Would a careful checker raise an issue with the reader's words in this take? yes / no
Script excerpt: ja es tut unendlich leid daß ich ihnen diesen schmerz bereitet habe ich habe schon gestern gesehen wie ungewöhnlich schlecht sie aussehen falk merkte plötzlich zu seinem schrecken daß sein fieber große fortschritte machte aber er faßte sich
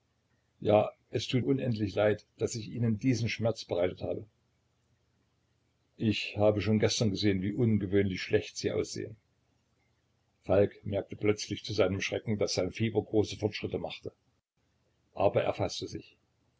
no